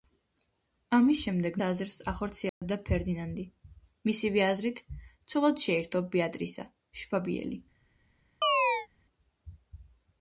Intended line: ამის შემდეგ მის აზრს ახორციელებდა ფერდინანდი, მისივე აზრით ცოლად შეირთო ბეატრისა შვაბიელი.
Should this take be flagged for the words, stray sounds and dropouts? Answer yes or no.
yes